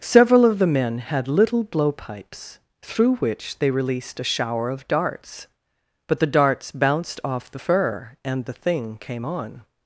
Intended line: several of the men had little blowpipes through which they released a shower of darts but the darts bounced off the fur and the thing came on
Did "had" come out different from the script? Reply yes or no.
no